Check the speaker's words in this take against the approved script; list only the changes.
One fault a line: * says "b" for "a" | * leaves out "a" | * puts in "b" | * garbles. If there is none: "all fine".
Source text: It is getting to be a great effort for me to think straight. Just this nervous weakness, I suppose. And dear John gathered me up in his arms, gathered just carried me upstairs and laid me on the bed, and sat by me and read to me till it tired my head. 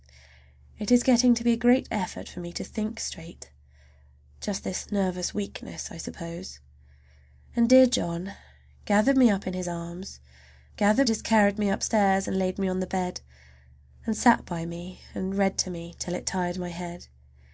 all fine